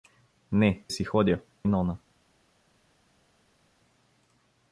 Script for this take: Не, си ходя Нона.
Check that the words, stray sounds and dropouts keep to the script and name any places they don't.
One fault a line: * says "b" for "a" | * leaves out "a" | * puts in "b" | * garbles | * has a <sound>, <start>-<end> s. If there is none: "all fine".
all fine